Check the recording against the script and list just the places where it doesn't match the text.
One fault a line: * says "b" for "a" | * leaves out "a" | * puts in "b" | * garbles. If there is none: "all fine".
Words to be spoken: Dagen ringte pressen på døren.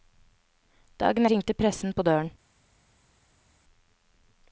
all fine